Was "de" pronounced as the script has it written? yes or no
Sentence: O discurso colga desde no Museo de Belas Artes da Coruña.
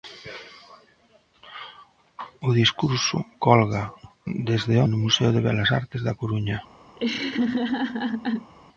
yes